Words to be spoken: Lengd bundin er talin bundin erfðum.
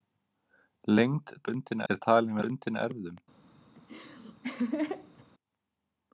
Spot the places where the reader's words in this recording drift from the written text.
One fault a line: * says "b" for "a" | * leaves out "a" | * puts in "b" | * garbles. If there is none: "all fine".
all fine